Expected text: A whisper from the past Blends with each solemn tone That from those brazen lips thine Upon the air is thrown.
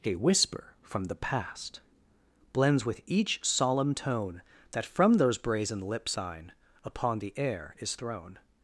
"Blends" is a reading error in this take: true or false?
false